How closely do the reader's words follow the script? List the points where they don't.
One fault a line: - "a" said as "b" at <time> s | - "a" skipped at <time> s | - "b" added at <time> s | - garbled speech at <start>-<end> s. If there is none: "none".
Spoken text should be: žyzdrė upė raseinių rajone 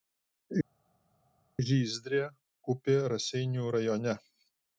none